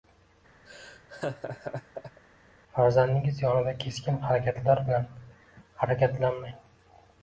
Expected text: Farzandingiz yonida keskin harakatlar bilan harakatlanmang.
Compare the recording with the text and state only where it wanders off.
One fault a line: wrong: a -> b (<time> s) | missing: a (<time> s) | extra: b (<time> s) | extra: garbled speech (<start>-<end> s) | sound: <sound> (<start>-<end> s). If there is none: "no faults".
sound: laugh (0.7-2.2 s)